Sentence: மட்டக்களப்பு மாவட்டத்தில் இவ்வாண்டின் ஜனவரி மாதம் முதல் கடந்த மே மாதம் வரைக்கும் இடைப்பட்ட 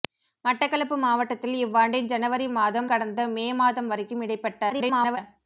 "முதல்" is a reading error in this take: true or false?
true